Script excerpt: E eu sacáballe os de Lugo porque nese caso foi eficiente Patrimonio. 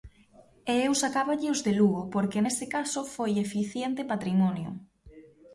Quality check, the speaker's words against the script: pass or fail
pass